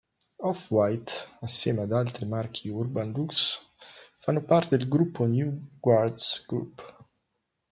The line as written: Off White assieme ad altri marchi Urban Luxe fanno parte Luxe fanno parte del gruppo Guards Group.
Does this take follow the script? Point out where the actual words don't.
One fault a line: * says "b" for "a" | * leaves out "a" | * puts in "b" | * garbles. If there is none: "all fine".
* leaves out "Luxe fanno parte"
* puts in "New"